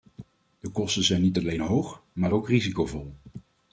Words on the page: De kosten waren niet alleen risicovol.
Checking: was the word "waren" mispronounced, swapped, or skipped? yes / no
yes